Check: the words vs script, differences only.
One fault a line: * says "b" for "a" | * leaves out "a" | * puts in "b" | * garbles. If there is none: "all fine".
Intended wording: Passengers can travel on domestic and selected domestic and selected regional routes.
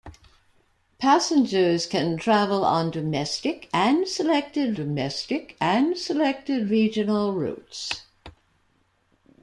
all fine